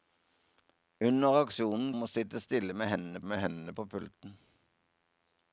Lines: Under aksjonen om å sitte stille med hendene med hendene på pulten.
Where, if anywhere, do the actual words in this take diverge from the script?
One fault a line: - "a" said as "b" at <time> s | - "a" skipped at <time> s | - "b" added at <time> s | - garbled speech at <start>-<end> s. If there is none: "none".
none